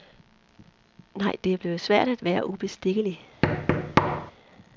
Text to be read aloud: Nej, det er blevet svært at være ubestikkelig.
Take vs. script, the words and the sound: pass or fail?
fail